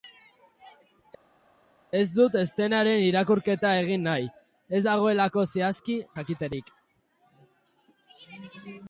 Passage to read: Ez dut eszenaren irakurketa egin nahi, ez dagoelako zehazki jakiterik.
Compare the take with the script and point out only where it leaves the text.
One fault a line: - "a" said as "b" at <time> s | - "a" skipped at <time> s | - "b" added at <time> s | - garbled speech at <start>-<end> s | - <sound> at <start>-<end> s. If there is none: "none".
none